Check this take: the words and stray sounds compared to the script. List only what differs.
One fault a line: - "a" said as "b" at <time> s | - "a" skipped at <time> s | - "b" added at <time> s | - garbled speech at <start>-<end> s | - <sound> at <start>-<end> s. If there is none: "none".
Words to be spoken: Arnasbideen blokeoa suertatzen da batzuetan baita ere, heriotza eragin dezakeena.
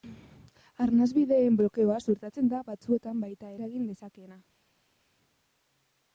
- "ere heriotza" skipped at 3.5 s